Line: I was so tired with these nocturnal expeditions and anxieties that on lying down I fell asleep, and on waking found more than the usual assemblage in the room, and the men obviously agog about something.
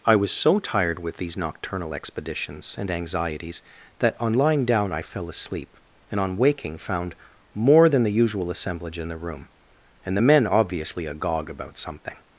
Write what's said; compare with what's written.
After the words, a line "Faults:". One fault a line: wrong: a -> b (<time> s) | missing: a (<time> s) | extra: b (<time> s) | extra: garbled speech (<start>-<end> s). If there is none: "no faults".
I was so tired with these nocturnal expeditions and anxieties that on lying down I fell asleep, and on waking found more than the usual assemblage in the room, and the men obviously agog about something.
Faults:
no faults